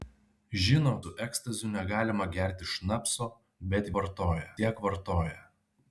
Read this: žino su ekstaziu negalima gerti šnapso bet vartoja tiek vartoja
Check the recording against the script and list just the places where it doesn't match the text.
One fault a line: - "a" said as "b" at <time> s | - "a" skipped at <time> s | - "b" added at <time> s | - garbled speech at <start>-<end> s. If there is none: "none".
none